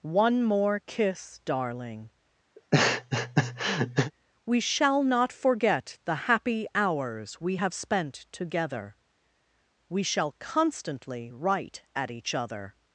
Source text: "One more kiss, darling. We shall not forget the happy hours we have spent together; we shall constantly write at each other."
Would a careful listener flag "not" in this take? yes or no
no